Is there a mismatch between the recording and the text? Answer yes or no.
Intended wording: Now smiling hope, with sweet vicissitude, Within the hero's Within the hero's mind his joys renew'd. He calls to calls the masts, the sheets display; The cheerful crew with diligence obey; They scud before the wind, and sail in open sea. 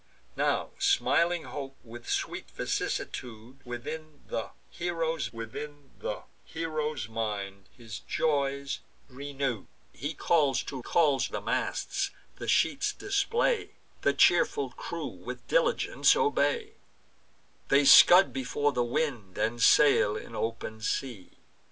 no